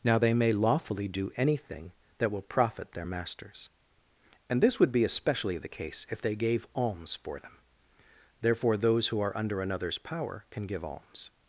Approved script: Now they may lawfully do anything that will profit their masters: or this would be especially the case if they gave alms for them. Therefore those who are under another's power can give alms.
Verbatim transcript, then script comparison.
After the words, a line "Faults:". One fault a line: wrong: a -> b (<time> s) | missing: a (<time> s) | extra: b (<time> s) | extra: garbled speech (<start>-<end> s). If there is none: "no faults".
Now they may lawfully do anything that will profit their masters: and this would be especially the case if they gave alms for them. Therefore those who are under another's power can give alms.
Faults:
wrong: or -> and (4.5 s)